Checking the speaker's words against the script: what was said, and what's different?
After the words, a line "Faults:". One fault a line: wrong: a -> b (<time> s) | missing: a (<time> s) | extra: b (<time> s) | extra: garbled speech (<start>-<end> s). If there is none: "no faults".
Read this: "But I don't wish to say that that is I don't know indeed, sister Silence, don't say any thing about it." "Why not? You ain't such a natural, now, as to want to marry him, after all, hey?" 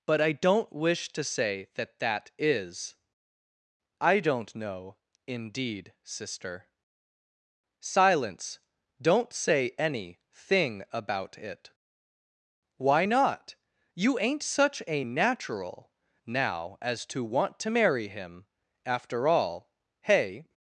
"But I don't wish to say that that is I don't know indeed, sister Silence, don't say any thing about it." "Why not? You ain't such a natural, now, as to want to marry him, after all, hey?"
Faults:
no faults